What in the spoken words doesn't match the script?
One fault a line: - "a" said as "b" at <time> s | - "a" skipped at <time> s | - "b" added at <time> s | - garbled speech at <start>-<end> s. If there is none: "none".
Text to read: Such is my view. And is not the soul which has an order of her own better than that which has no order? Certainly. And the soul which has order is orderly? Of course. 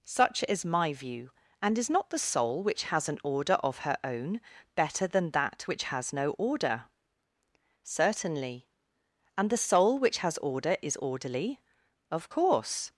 none